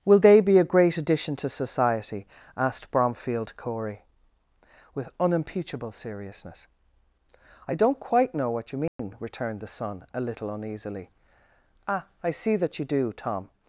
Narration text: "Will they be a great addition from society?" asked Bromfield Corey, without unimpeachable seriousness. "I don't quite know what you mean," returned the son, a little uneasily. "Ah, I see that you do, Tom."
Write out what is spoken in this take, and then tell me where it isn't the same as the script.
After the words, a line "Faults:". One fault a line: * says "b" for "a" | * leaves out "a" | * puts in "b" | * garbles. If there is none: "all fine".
"Will they be a great addition to society?" asked Bromfield Corey, with unimpeachable seriousness. "I don't quite know what you mean," returned the son, a little uneasily. "Ah, I see that you do, Tom."
Faults:
* says "to" for "from"
* says "with" for "without"